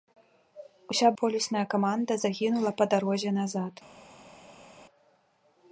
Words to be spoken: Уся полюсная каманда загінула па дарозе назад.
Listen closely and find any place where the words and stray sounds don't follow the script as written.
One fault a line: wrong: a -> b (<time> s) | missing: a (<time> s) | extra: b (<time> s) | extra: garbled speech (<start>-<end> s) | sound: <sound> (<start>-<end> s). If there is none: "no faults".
no faults